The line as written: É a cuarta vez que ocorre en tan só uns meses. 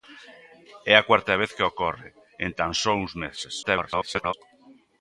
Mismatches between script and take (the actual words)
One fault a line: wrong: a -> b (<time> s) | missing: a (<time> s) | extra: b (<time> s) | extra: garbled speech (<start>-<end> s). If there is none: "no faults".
extra: garbled speech (3.6-4.3 s)